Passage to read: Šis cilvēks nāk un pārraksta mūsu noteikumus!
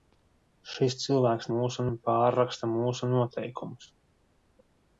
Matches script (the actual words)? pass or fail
fail